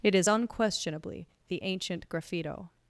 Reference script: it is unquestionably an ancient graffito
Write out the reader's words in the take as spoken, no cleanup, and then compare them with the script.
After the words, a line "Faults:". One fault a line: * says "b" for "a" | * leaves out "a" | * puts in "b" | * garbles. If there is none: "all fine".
it is unquestionably the ancient graffito
Faults:
* says "the" for "an"